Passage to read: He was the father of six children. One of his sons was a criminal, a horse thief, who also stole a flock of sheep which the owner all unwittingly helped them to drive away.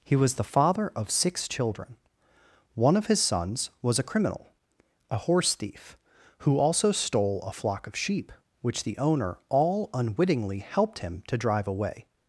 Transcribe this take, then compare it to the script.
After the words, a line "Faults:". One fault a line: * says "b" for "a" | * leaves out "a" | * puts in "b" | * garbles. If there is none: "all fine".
He was the father of six children. One of his sons was a criminal, a horse thief, who also stole a flock of sheep which the owner all unwittingly helped him to drive away.
Faults:
* says "him" for "them"